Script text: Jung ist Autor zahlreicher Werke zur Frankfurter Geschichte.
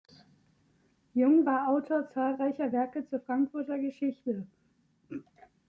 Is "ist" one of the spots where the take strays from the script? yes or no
yes